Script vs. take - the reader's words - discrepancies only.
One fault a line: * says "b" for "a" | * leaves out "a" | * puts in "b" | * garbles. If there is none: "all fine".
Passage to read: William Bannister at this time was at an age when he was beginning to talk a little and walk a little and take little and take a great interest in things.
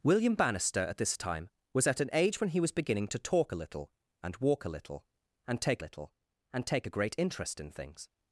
all fine